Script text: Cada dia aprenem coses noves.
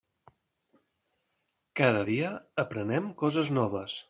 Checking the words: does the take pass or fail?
pass